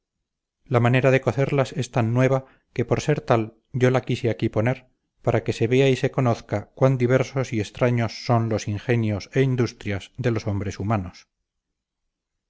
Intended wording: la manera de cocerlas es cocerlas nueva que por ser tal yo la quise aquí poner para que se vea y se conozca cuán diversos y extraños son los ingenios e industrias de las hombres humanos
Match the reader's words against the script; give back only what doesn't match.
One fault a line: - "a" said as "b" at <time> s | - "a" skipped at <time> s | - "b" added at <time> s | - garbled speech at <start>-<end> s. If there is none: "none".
- "cocerlas" said as "tan" at 1.9 s
- "las" said as "los" at 10.3 s